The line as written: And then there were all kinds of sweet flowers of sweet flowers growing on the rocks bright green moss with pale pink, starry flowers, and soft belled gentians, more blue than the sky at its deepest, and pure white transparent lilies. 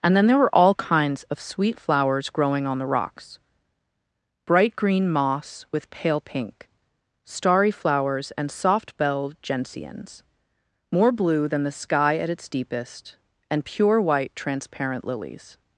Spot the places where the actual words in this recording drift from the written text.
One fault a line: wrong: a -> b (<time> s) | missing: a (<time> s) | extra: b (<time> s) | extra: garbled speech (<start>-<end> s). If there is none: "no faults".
missing: of sweet flowers (2.3 s)